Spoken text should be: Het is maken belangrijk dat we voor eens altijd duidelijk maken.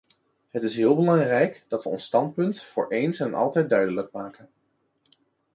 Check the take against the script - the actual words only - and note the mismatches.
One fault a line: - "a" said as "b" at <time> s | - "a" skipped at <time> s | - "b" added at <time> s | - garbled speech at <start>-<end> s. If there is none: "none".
- "maken" said as "heel" at 0.8 s
- "ons standpunt" added at 1.9 s
- "en" added at 3.2 s